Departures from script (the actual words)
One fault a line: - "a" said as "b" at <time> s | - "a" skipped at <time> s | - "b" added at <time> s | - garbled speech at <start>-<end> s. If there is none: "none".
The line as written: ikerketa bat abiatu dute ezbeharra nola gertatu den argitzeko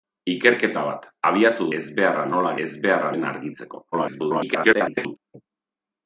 - "dute" skipped at 1.7 s
- "gertatu" said as "ezbeharra" at 2.6 s
- garbled speech at 3.9-5.2 s